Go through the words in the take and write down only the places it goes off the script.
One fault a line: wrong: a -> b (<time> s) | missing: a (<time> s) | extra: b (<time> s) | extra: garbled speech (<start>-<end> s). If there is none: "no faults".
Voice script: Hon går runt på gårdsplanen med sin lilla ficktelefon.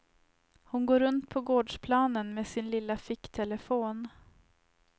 no faults